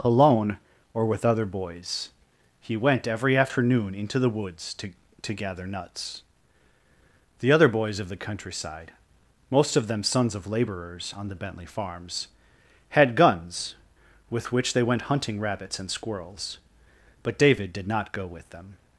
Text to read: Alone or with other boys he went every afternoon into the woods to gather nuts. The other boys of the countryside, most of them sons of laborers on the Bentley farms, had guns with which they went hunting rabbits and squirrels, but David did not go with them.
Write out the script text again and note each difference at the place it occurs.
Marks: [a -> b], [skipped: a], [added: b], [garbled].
Alone or with other boys he went every afternoon into the woods to [added: to] gather nuts. The other boys of the countryside, most of them sons of laborers on the Bentley farms, had guns with which they went hunting rabbits and squirrels, but David did not go with them.